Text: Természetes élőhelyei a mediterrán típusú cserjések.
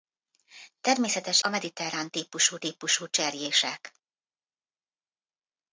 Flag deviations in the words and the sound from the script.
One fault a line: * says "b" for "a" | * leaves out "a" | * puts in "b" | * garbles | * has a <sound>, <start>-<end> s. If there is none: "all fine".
* leaves out "élőhelyei"
* puts in "típusú"